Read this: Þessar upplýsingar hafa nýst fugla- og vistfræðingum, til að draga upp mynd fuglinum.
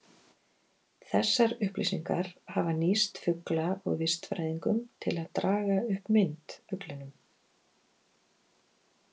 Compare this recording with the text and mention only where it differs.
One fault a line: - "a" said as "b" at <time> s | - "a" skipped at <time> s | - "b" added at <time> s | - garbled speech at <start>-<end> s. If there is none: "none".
none